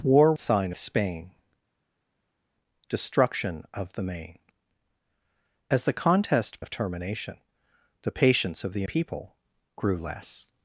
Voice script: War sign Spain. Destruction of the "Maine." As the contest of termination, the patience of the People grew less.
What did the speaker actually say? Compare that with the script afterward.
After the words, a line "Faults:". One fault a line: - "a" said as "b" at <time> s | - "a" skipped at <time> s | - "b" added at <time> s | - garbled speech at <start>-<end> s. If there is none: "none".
War sign Spain. Destruction of the "Maine." As the contest of termination, the patience of the People grew less.
Faults:
none